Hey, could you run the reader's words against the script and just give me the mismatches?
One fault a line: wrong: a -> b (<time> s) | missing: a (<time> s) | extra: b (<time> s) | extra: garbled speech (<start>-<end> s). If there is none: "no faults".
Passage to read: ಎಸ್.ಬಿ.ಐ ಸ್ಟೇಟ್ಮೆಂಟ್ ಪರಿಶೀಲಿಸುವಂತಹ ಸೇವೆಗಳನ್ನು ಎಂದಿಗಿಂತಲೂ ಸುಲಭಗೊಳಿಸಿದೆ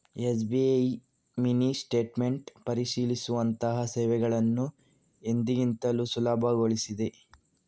extra: ಮಿನಿ (1.4 s)